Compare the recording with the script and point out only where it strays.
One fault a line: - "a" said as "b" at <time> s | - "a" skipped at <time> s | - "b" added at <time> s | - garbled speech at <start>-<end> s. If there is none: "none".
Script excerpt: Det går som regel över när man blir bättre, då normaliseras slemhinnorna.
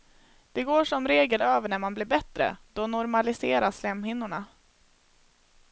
none